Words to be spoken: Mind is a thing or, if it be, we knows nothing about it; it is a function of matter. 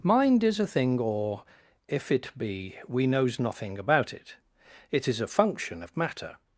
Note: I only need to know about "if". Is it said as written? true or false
true